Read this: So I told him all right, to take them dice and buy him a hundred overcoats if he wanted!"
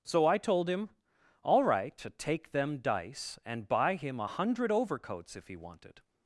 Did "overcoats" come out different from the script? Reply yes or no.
no